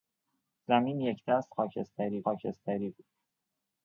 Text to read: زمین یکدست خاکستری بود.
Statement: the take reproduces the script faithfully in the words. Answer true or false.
false